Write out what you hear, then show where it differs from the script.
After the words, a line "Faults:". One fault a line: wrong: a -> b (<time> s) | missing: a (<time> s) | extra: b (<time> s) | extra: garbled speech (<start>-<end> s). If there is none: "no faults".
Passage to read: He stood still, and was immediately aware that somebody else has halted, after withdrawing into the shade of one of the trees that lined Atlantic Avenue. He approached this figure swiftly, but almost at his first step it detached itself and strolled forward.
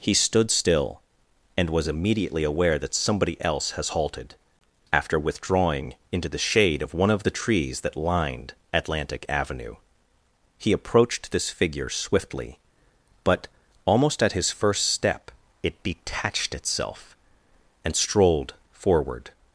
He stood still, and was immediately aware that somebody else has halted, after withdrawing into the shade of one of the trees that lined Atlantic Avenue. He approached this figure swiftly, but almost at his first step it detached itself and strolled forward.
Faults:
no faults